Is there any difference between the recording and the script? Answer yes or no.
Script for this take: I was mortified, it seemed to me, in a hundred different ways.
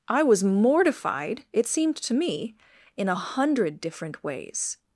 no